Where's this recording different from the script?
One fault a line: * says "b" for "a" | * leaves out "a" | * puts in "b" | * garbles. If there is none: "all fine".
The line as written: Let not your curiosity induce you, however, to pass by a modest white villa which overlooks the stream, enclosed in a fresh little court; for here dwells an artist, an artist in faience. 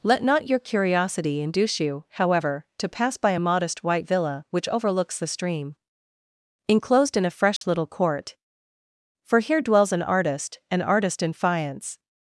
all fine